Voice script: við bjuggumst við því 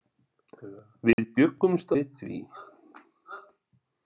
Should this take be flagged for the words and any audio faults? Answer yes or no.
yes